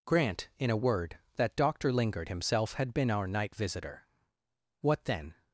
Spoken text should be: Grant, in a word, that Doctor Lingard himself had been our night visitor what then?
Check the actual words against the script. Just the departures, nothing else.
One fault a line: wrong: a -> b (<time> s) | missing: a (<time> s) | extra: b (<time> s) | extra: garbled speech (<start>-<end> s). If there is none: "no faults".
no faults